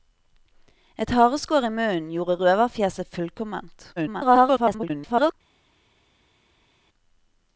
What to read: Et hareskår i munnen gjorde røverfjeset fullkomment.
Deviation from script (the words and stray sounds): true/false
true